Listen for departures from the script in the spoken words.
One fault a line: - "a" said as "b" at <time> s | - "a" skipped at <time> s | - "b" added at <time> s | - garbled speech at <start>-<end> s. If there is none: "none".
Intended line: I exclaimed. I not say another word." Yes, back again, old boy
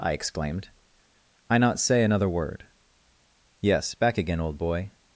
none